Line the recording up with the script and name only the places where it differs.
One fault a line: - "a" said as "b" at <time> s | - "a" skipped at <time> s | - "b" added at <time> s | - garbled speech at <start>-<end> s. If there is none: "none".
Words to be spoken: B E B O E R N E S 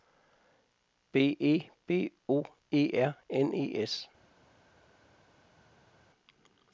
none